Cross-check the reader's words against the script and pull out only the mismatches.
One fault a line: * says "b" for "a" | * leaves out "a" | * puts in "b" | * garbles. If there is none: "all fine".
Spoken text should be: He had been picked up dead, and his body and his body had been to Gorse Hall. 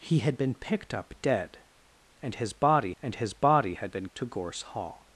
all fine